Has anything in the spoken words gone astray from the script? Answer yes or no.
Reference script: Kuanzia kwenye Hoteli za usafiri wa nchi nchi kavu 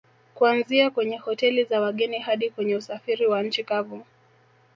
yes